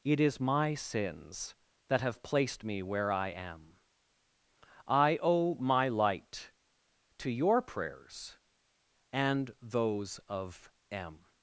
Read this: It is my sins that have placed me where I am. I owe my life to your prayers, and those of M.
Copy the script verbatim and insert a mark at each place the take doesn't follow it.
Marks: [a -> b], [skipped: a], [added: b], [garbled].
It is my sins that have placed me where I am. I owe my [life -> light] to your prayers, and those of M.